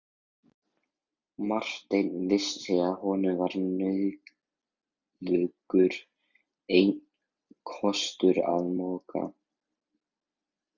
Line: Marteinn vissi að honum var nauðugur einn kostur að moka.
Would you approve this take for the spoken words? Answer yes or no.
yes